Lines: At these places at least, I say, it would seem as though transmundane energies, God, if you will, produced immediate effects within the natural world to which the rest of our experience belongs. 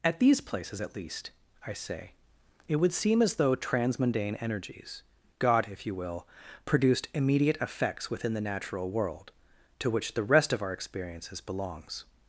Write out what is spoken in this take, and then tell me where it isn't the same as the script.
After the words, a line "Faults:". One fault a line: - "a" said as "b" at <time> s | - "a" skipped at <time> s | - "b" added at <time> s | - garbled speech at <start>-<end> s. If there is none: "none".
At these places at least, I say, it would seem as though transmundane energies, God, if you will, produced immediate effects within the natural world to which the rest of our experiences belongs.
Faults:
- "experience" said as "experiences" at 10.7 s